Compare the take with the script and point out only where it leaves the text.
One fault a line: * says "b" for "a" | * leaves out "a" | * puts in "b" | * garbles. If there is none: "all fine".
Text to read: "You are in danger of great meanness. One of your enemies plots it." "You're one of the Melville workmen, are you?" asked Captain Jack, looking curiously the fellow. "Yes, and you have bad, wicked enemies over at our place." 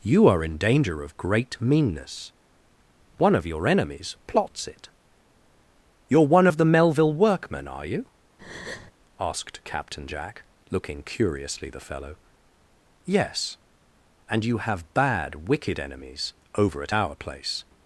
all fine